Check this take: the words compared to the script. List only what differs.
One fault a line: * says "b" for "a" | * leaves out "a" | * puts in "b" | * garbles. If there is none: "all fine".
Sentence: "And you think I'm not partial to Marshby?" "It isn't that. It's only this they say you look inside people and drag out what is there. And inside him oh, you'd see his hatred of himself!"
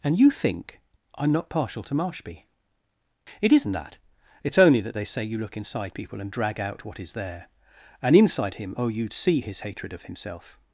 * says "that" for "this"